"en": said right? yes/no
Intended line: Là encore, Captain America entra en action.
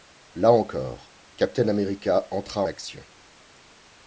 no